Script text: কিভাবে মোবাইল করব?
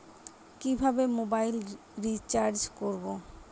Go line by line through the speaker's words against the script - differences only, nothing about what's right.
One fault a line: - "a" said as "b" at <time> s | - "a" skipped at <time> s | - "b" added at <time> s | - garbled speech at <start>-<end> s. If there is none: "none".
- "রিচার্জ" added at 2.0 s